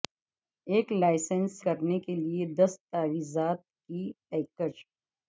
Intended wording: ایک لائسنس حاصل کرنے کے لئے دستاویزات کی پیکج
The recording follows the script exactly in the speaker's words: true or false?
false